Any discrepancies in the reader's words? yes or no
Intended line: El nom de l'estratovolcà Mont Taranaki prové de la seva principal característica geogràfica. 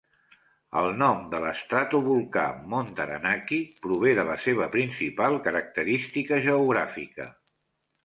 no